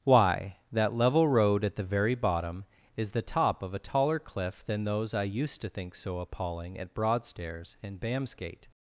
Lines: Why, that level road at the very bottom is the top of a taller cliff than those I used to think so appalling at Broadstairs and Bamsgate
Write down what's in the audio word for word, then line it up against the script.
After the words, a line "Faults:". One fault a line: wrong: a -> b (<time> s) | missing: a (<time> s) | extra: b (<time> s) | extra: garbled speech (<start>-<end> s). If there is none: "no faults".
Why, that level road at the very bottom is the top of a taller cliff than those I used to think so appalling at Broadstairs and Bamsgate
Faults:
no faults